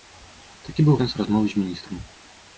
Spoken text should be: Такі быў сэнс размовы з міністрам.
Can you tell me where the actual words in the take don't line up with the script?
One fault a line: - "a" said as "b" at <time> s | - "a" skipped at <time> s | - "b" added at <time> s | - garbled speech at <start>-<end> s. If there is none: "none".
none